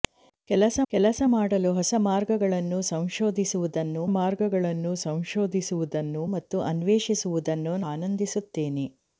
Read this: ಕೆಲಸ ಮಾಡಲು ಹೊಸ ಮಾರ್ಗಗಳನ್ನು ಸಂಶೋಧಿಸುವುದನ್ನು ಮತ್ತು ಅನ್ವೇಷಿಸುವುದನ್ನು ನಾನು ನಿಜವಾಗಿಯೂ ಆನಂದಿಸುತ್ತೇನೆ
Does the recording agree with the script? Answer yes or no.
no